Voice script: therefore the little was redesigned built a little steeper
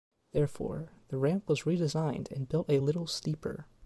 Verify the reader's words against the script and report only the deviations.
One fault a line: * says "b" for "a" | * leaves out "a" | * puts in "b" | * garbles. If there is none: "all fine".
* says "ramp" for "little"
* puts in "and"